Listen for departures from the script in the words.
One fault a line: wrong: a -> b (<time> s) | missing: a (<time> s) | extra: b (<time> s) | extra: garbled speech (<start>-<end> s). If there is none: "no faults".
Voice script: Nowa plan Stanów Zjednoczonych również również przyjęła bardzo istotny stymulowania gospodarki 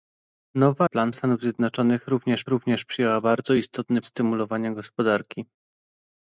no faults